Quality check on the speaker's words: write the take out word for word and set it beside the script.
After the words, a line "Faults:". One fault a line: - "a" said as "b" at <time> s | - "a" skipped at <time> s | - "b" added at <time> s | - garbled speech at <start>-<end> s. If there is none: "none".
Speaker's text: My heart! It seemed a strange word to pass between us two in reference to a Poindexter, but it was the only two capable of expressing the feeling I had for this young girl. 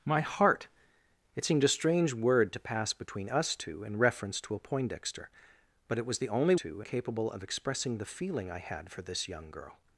My heart! It seemed a strange word to pass between us two in reference to a Poindexter, but it was the only two capable of expressing the feeling I had for this young girl.
Faults:
none